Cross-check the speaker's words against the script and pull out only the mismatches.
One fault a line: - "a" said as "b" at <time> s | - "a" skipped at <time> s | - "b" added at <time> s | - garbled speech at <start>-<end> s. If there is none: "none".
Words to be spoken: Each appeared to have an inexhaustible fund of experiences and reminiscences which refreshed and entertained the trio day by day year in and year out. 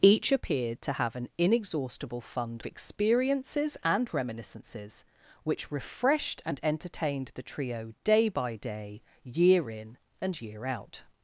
- "of" skipped at 2.6 s